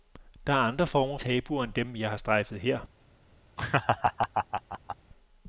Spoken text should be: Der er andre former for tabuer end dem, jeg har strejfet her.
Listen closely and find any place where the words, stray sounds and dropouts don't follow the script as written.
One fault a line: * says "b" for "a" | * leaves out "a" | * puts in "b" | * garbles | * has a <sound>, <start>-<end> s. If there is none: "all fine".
* leaves out "for"
* has a laugh, 3.6-5.0 s